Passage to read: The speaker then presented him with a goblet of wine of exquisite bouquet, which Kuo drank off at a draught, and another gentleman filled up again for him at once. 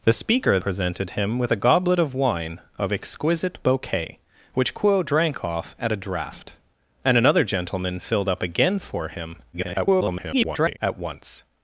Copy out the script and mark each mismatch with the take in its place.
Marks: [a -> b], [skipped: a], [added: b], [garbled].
The speaker [skipped: then] presented him with a goblet of wine of exquisite bouquet, which Kuo drank off at a draught, and another gentleman filled up again for him [garbled] at once.